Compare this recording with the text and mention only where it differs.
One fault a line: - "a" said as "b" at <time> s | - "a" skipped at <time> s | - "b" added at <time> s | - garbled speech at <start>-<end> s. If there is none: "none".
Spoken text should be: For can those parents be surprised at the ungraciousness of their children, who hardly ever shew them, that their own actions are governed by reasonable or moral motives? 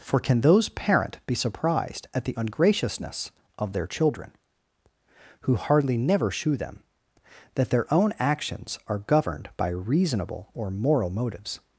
- "parents" said as "parent" at 0.7 s
- "ever" said as "never" at 6.0 s